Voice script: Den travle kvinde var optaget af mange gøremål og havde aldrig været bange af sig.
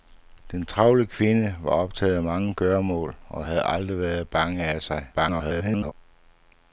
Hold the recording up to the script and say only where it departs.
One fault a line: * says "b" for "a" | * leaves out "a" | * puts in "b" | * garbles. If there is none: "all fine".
* garbles